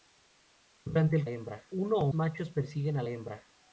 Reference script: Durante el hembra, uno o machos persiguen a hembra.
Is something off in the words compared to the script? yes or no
no